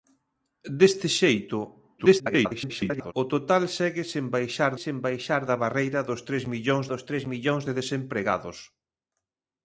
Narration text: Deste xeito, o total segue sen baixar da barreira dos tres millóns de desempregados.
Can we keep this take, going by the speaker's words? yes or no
no